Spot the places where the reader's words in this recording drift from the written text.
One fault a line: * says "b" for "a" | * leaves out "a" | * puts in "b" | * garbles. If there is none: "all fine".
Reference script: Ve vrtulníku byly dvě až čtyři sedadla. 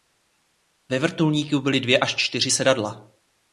all fine